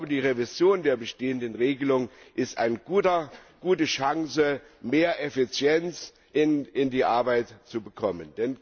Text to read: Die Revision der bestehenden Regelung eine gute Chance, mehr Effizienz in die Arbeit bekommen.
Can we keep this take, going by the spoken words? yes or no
no